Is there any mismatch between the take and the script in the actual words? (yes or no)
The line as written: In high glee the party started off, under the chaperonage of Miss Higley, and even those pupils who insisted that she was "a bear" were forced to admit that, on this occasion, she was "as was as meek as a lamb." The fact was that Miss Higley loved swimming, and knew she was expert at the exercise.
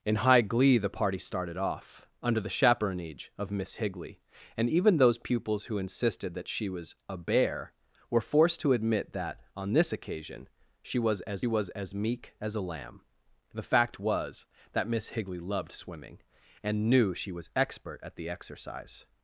no